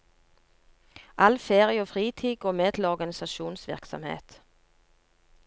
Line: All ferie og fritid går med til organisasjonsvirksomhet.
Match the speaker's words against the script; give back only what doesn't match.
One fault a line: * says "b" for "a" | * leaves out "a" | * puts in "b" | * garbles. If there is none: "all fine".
all fine